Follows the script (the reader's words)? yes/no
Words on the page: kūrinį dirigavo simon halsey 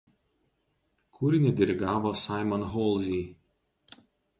yes